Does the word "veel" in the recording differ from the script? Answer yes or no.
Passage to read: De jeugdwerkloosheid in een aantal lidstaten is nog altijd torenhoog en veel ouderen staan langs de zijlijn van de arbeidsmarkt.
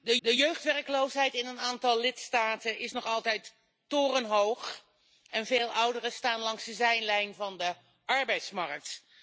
no